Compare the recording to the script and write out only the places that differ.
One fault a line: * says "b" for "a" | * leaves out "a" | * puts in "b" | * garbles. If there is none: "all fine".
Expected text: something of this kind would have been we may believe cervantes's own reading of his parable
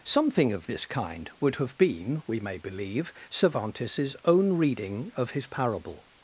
all fine